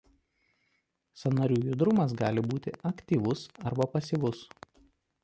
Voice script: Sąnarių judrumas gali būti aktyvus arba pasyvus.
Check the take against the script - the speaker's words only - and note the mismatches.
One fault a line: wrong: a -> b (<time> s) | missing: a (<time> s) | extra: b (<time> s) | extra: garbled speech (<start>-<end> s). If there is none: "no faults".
no faults